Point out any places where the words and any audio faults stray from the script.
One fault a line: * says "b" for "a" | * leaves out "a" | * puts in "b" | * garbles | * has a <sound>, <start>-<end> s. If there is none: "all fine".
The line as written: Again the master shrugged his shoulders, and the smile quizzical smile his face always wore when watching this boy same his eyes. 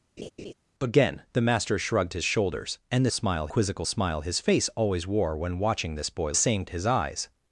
* has a laugh, 0.2-0.5 s